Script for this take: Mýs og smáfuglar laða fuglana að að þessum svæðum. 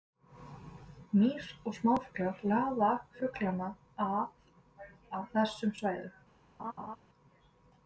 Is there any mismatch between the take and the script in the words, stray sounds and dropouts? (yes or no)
yes